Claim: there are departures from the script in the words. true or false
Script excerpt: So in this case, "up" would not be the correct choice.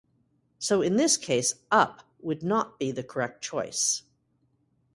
false